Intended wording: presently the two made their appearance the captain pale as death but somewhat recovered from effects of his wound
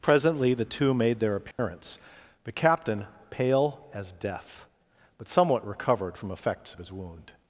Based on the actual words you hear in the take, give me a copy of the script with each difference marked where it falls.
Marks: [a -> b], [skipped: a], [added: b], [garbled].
presently the two made their appearance the captain pale as death but somewhat recovered from effects of his wound